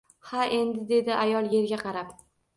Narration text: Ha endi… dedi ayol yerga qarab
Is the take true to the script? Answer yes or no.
yes